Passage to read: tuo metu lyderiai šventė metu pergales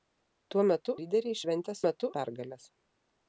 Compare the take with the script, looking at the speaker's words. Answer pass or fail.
pass